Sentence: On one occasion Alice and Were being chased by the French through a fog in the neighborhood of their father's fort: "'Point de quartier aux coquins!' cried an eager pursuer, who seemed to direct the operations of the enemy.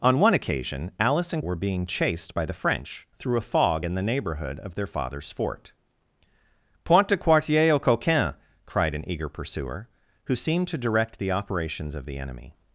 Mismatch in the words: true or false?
false